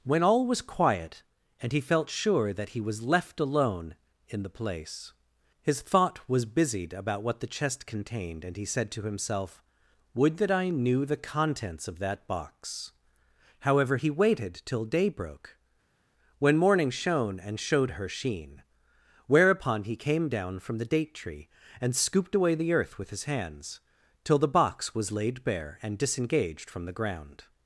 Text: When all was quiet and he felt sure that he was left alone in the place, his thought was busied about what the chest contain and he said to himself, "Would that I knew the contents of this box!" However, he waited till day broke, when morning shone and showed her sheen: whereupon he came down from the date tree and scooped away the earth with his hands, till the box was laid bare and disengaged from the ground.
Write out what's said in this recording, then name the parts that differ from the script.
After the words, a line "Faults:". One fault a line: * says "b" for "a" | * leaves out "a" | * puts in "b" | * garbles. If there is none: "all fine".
When all was quiet and he felt sure that he was left alone in the place, his thought was busied about what the chest contained and he said to himself, "Would that I knew the contents of that box!" However, he waited till day broke, when morning shone and showed her sheen: whereupon he came down from the date tree and scooped away the earth with his hands, till the box was laid bare and disengaged from the ground.
Faults:
* says "contained" for "contain"
* says "that" for "this"